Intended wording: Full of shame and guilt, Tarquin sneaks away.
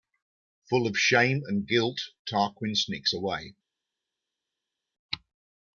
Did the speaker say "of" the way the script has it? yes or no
yes